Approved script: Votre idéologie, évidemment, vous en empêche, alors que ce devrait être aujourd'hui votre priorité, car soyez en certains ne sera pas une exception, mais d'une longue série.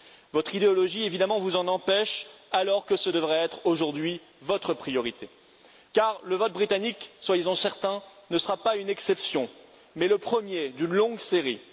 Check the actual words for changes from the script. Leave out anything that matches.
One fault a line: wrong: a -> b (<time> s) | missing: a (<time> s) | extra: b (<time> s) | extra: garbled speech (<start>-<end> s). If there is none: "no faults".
extra: le vote britannique (6.2 s)
extra: le premier (10.1 s)